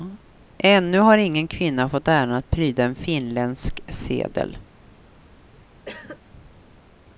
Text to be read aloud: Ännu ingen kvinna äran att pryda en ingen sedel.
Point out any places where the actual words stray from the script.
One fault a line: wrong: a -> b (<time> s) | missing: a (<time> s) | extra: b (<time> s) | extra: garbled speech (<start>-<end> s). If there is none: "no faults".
extra: har (1.0 s)
extra: fått (1.9 s)
wrong: ingen -> finländsk (3.0 s)